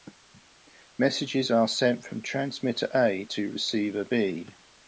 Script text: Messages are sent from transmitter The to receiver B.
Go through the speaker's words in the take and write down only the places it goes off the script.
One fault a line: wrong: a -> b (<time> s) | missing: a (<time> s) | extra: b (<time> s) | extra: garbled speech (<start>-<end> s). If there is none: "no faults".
wrong: The -> A (2.9 s)